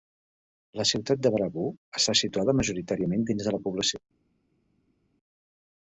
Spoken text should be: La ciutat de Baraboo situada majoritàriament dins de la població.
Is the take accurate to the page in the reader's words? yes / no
no